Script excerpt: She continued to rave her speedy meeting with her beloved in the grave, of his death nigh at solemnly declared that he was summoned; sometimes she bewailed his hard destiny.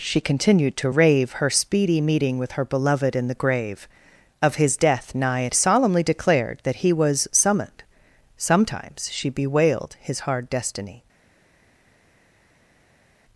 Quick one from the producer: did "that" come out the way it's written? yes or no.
yes